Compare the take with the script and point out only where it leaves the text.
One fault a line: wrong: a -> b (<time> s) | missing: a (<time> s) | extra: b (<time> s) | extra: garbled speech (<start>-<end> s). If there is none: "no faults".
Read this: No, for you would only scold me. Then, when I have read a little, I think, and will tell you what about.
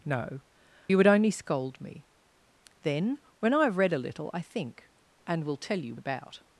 missing: for (0.4 s)
missing: what (5.9 s)